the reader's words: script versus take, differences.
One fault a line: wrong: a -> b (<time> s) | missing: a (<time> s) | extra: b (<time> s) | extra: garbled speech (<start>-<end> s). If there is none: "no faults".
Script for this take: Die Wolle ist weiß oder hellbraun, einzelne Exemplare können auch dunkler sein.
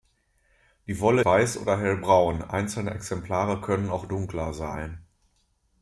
missing: ist (1.2 s)